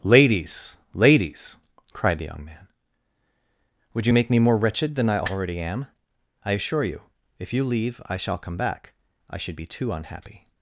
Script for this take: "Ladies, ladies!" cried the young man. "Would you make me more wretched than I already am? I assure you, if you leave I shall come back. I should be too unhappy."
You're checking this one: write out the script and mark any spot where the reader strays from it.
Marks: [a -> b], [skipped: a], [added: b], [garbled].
"Ladies, ladies!" cried the young man. "Would you make me more wretched than I already am? I assure you, if you leave I shall come back. I should be too unhappy."